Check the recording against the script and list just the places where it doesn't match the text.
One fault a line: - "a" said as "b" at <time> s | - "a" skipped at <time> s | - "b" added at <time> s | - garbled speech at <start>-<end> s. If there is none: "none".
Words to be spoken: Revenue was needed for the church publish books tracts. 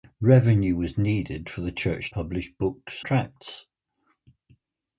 none